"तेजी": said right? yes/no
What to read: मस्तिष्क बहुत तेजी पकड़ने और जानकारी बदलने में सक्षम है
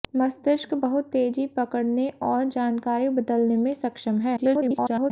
yes